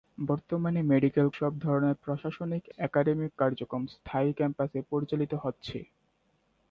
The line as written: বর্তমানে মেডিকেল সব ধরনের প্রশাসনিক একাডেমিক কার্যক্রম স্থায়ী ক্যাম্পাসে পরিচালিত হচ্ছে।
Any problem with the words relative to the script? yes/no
no